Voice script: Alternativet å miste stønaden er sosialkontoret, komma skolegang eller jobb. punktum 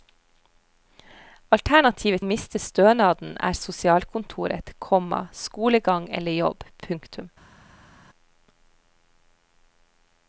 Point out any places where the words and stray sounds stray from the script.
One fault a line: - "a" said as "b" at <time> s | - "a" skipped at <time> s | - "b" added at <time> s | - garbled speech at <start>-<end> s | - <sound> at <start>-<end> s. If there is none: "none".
none